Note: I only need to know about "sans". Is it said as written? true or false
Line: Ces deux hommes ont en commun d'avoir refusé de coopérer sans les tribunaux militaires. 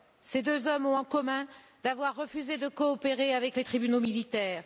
false